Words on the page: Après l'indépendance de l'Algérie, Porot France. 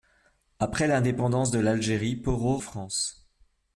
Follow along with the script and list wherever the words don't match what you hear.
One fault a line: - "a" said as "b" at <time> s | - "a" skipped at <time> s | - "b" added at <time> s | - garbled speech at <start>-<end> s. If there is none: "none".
none